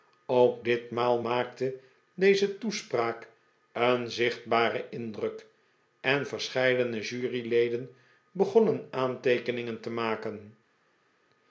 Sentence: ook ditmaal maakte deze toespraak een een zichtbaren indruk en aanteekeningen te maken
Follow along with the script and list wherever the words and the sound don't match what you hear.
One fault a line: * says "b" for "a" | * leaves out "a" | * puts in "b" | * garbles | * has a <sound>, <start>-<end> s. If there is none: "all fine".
* leaves out "een"
* puts in "verscheidene juryleden begonnen"